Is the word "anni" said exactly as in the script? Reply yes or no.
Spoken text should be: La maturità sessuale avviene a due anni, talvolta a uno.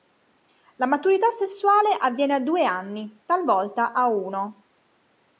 yes